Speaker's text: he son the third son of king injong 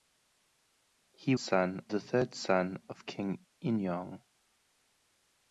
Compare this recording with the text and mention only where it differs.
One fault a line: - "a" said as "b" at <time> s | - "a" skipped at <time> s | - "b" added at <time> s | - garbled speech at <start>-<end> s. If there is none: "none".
none